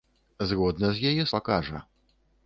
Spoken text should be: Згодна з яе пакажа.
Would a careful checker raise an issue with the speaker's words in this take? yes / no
no